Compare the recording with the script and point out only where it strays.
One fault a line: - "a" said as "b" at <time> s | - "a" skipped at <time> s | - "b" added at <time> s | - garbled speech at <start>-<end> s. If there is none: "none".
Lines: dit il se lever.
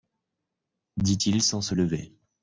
- "sans" added at 1.4 s